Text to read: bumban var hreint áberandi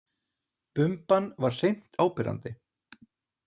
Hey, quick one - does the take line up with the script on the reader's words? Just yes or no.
yes